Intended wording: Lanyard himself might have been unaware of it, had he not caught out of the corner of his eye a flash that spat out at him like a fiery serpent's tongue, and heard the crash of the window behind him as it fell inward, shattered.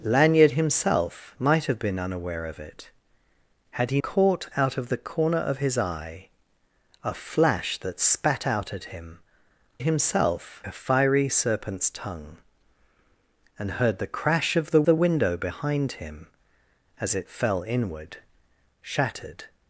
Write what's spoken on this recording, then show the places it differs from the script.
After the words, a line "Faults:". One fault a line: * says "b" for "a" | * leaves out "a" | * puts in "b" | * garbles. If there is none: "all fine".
Lanyard himself might have been unaware of it, had he caught out of the corner of his eye a flash that spat out at him himself a fiery serpent's tongue, and heard the crash of the the window behind him as it fell inward, shattered.
Faults:
* leaves out "not"
* says "himself" for "like"
* puts in "the"